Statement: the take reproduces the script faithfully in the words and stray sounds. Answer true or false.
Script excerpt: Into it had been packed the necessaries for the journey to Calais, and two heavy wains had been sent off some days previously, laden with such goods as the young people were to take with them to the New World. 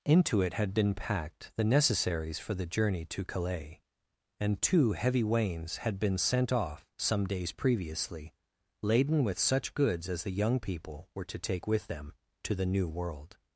true